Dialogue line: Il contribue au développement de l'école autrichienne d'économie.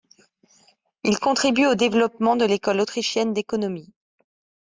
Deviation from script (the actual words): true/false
false